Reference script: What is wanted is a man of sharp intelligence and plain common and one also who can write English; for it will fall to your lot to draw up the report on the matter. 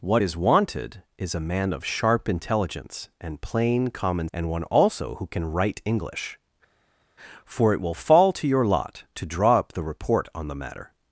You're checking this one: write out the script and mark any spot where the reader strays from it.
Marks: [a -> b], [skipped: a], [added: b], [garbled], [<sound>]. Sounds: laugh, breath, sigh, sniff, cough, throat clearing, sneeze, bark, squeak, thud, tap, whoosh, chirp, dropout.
What is wanted is a man of sharp intelligence and plain common and one also who can write English; for it will fall to your lot to draw up the report on the matter.